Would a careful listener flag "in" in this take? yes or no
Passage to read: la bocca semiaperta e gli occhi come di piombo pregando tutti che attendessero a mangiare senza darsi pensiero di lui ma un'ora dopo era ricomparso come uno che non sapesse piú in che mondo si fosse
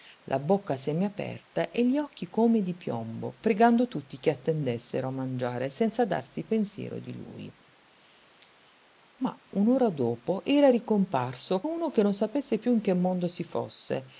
no